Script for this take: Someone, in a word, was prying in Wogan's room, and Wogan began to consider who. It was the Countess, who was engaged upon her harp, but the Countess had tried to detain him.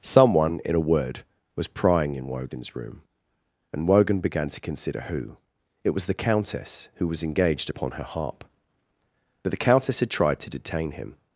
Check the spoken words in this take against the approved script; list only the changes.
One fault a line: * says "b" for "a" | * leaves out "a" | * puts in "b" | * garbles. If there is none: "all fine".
all fine